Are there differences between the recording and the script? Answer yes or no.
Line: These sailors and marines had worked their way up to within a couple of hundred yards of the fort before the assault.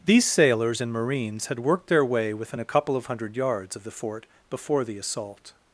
yes